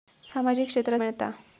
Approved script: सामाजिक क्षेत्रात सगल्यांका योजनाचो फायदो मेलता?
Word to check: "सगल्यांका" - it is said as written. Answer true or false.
false